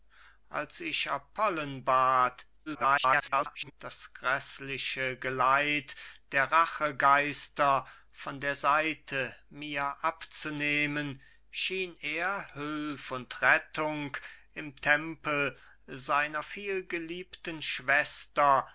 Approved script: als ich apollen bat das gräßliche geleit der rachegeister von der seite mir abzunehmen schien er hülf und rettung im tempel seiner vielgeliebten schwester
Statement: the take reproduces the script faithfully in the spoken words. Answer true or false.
false